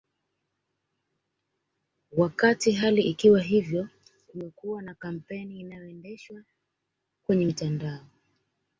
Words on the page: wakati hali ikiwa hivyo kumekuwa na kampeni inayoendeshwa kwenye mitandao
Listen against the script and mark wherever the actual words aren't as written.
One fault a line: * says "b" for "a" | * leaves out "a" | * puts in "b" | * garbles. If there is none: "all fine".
all fine